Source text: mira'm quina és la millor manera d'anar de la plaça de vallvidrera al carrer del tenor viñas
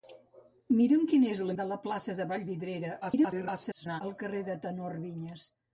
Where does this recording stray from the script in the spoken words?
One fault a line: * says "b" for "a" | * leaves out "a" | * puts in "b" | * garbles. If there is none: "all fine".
* leaves out "millor manera d'anar"
* garbles